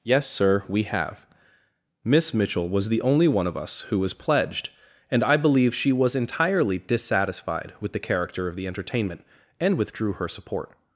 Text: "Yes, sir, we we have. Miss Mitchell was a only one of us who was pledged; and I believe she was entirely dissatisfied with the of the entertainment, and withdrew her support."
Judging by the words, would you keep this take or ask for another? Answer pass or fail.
fail